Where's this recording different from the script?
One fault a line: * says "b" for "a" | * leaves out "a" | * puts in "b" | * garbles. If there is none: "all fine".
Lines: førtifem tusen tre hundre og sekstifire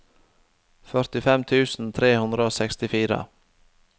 all fine